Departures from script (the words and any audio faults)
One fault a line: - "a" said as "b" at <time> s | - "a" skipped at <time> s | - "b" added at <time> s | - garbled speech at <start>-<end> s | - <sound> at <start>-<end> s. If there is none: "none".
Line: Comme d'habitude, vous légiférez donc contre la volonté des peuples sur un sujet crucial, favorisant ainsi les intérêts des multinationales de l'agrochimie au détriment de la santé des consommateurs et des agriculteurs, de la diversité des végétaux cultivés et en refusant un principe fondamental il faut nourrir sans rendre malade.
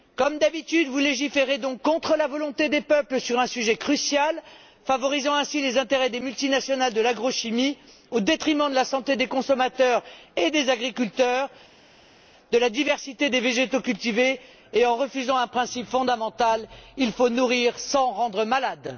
none